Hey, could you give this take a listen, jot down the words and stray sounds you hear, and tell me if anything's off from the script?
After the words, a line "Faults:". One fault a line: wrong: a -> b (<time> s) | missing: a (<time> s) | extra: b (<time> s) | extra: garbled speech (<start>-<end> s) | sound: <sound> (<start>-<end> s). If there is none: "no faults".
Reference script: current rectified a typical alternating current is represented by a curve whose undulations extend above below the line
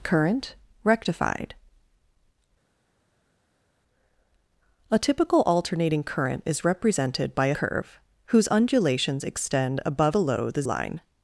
current rectified a typical alternating current is represented by a curve whose undulations extend above below the line
Faults:
no faults